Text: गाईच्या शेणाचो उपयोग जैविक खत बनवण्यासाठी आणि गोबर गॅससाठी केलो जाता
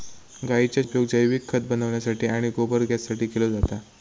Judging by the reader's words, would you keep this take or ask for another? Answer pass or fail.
fail